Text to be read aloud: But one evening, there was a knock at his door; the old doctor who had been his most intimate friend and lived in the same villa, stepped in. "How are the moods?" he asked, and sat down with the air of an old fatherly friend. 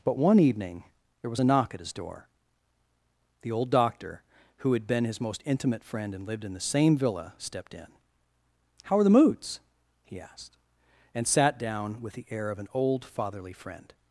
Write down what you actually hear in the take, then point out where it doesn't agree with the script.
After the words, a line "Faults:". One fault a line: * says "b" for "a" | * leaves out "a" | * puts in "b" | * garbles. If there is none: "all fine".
But one evening, there was a knock at his door; the old doctor who had been his most intimate friend and lived in the same villa, stepped in. "How are the moods?" he asked, and sat down with the air of an old fatherly friend.
Faults:
all fine